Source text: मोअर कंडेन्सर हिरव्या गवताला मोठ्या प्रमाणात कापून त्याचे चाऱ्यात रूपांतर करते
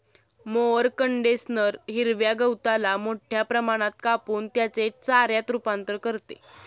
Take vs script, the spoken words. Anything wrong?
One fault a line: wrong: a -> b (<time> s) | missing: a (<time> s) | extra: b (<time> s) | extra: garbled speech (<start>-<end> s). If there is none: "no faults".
no faults